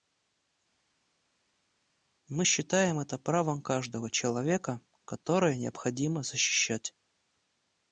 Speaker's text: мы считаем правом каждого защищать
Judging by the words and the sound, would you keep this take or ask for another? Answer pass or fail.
fail